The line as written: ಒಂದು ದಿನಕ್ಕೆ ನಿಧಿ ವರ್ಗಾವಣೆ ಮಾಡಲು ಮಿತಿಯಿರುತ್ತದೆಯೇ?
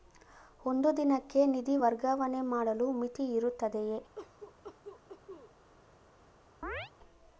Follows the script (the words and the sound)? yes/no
no